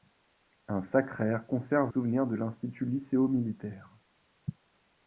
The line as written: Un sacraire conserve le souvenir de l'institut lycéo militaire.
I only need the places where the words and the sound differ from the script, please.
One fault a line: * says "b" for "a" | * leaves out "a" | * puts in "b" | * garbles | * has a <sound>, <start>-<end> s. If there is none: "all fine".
* leaves out "le"